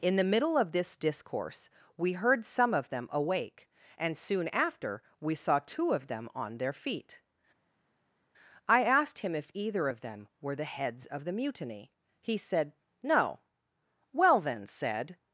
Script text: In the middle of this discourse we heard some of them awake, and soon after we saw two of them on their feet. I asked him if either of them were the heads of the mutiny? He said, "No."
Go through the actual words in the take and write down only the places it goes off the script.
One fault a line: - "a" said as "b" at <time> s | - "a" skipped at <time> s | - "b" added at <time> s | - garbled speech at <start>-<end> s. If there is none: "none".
- "Well then said" added at 14.1 s